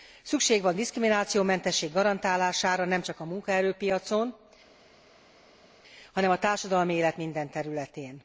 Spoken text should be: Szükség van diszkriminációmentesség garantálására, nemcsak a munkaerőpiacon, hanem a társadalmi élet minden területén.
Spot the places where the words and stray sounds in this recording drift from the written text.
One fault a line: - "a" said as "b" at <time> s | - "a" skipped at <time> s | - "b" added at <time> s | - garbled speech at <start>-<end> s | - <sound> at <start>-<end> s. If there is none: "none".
none